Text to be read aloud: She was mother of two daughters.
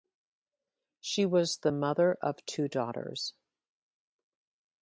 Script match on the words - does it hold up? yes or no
no